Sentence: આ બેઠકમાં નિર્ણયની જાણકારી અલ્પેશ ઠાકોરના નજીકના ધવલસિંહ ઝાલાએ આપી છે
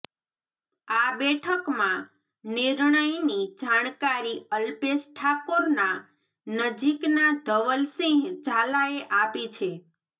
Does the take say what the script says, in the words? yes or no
yes